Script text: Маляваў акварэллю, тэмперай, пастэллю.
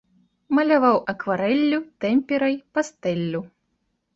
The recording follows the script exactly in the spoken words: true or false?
true